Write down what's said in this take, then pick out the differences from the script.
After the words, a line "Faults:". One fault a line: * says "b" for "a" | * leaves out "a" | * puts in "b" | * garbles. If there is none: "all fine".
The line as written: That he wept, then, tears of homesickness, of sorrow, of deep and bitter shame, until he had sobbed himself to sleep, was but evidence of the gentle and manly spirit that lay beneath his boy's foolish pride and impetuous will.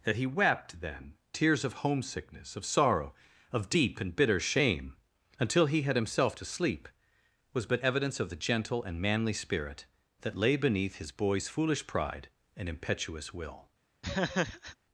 That he wept, then, tears of homesickness, of sorrow, of deep and bitter shame, until he had himself to sleep, was but evidence of the gentle and manly spirit that lay beneath his boy's foolish pride and impetuous will.
Faults:
* leaves out "sobbed"